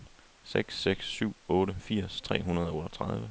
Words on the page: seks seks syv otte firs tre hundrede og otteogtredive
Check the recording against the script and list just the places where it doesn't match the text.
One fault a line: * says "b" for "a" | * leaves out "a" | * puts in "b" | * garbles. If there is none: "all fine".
all fine